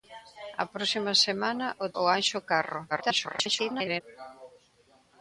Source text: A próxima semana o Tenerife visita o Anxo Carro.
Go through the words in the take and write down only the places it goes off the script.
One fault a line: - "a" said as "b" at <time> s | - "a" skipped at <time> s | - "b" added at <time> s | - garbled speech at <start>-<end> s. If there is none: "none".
- "Tenerife visita" skipped at 1.9 s
- garbled speech at 2.9-4.0 s